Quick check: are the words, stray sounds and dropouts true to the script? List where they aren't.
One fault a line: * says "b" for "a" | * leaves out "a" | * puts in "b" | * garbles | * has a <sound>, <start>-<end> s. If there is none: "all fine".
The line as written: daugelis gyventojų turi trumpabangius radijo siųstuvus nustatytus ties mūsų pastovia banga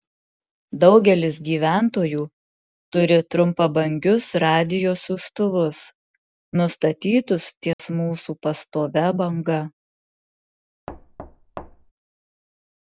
* has a dropout, 7.7-7.8 s
* has a thud, 10.9-11.9 s